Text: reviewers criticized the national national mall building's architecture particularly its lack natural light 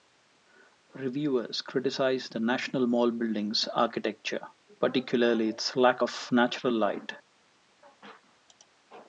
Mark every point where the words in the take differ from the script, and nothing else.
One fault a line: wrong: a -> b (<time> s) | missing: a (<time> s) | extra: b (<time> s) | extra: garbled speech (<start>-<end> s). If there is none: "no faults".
missing: national (2.9 s)
extra: of (6.0 s)